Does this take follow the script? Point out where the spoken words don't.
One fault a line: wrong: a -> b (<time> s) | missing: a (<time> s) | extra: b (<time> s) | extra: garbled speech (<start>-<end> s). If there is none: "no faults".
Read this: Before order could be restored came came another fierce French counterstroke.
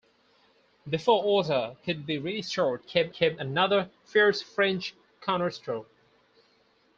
no faults